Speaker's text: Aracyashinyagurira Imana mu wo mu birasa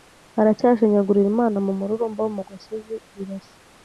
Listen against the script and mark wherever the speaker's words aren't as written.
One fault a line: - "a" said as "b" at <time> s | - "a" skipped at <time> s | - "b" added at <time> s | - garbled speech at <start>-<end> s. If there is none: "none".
- "mururumba" added at 1.8 s
- "gasozi" added at 2.5 s